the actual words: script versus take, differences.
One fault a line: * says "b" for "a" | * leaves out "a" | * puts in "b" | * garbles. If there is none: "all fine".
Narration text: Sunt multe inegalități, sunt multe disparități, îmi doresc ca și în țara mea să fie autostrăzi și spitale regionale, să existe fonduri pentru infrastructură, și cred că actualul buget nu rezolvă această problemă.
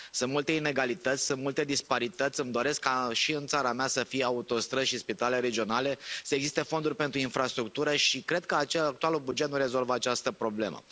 all fine